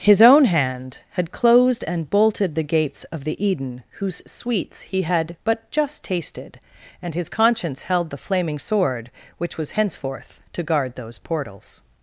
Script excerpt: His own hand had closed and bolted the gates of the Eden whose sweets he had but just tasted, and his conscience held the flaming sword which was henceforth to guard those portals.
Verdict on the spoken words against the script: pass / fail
pass